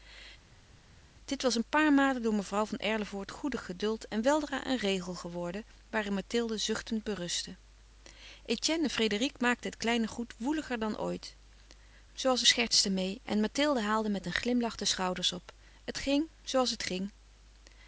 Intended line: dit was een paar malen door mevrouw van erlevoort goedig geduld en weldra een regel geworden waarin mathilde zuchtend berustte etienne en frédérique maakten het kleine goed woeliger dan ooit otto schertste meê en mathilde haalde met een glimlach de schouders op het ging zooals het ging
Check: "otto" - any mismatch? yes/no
yes